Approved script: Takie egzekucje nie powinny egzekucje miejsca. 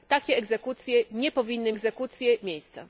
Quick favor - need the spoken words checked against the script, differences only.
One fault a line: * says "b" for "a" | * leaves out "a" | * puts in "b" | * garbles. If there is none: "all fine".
all fine